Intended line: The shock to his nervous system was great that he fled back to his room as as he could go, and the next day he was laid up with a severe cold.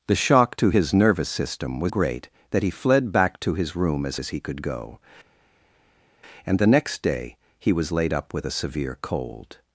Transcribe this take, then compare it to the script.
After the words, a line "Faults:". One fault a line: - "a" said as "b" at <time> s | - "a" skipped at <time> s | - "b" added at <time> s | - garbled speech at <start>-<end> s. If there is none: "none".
The shock to his nervous system was great that he fled back to his room as as he could go, and the next day he was laid up with a severe cold.
Faults:
none